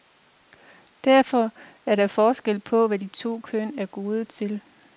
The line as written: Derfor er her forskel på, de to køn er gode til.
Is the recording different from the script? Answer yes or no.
yes